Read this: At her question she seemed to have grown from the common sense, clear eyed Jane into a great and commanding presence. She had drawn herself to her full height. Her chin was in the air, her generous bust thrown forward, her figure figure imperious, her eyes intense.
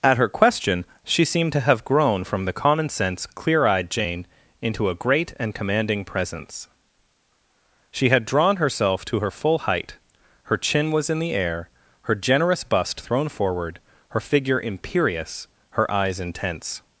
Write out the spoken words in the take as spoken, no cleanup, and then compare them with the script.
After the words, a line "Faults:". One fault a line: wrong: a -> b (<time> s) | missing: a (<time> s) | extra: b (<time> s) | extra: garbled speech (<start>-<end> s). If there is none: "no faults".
At her question she seemed to have grown from the common sense, clear eyed Jane into a great and commanding presence. She had drawn herself to her full height. Her chin was in the air, her generous bust thrown forward, her figure imperious, her eyes intense.
Faults:
missing: figure (14.6 s)